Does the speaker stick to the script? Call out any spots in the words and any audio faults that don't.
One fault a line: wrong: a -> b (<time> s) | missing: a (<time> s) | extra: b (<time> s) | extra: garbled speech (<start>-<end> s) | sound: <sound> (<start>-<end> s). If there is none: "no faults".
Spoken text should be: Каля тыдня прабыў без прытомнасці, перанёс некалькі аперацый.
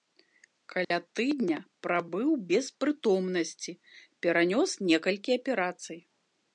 sound: dropout (0.8-0.9 s)